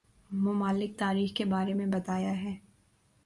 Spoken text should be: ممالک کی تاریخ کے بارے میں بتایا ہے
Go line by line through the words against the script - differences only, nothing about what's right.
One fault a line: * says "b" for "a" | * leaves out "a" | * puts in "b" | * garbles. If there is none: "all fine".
* leaves out "کی"